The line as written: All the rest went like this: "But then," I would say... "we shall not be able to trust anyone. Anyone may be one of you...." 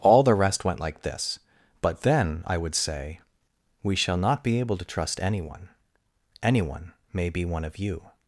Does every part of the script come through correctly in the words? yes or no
yes